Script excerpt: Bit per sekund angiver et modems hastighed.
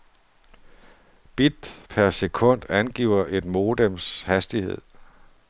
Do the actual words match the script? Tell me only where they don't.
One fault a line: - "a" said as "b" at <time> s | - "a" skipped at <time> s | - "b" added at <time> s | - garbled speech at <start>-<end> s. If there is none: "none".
none